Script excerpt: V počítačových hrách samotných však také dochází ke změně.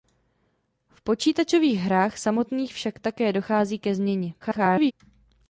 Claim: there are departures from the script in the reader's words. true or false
true